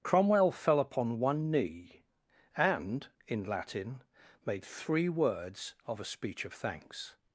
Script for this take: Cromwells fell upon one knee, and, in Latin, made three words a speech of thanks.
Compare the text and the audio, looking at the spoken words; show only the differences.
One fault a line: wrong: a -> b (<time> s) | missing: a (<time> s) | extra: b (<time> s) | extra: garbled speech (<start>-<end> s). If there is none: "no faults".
wrong: Cromwells -> Cromwell (0.0 s)
extra: of (5.9 s)